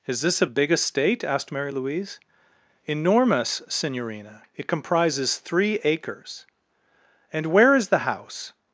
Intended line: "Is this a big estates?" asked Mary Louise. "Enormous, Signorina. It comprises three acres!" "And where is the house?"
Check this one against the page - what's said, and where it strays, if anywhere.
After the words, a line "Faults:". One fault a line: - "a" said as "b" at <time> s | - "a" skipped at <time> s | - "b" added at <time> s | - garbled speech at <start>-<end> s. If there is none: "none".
"Is this a big estate?" asked Mary Louise. "Enormous, Signorina. It comprises three acres!" "And where is the house?"
Faults:
- "estates" said as "estate" at 0.7 s